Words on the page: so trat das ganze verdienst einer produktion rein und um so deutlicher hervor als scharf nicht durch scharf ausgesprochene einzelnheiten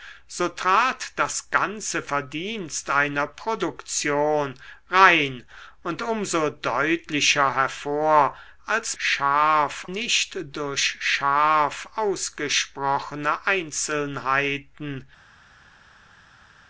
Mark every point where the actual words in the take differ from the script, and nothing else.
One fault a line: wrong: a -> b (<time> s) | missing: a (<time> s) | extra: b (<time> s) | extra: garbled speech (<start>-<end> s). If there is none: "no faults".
no faults